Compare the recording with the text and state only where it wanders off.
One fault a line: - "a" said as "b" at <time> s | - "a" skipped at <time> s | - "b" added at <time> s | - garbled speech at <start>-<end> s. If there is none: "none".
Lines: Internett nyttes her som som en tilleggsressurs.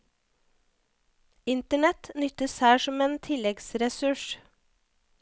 - "som" skipped at 3.0 s